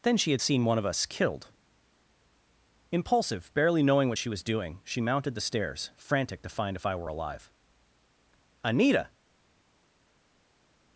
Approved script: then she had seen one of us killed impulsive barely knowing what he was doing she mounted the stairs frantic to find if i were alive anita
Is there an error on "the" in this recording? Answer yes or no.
no